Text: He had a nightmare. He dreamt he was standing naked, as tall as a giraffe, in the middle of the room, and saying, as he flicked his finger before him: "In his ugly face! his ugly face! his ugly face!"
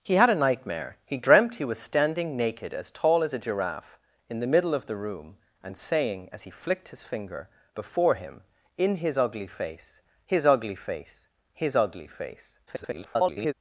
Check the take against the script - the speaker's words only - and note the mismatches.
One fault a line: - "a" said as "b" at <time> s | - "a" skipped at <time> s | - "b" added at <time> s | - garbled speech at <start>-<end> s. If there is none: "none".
- garbled speech at 12.7-13.5 s